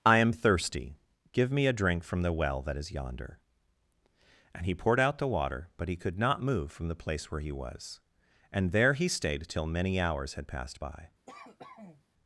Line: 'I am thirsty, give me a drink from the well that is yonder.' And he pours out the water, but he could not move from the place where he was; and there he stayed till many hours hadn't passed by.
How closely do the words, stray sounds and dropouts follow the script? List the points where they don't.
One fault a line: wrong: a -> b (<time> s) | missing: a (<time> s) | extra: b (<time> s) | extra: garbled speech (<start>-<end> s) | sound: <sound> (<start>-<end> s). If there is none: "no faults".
wrong: pours -> poured (4.7 s)
wrong: hadn't -> had (10.3 s)
sound: cough (11.3-12.0 s)